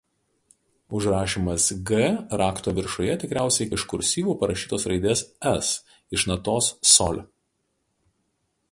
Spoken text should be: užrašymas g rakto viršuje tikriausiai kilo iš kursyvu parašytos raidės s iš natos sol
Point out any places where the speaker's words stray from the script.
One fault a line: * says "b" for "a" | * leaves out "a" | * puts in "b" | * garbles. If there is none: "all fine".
* leaves out "kilo"